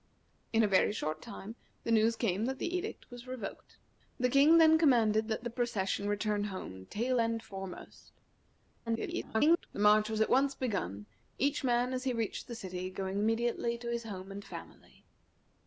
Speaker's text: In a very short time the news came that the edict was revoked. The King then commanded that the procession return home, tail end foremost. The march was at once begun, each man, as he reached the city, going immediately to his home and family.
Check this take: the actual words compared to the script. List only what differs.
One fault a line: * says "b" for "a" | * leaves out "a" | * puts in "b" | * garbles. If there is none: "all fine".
* garbles